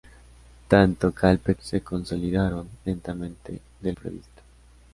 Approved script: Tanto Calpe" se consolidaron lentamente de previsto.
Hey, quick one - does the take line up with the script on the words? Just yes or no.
yes